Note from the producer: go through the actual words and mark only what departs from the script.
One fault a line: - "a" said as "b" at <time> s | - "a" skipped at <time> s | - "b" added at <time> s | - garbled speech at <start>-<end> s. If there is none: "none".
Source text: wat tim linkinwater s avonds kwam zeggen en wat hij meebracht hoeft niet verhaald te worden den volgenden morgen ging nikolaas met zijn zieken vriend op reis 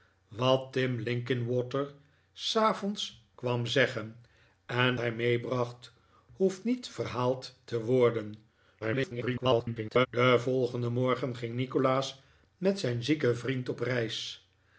- "wat" skipped at 5.0 s
- garbled speech at 8.8-10.1 s